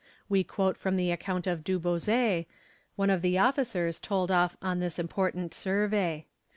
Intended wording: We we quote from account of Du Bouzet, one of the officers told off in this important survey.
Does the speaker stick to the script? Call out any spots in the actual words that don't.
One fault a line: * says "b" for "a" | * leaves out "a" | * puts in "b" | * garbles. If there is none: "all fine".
* leaves out "we"
* puts in "the"
* says "on" for "in"